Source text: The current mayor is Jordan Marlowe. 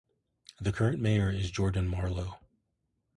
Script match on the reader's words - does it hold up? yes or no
yes